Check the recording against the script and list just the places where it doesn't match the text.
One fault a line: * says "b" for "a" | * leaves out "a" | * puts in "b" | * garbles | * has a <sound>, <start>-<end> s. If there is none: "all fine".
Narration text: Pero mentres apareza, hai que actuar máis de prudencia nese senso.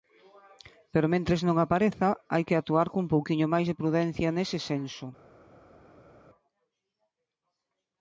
* puts in "non"
* puts in "cun pouquiño"